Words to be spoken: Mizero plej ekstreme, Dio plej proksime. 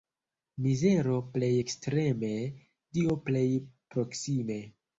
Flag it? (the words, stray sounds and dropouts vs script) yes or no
no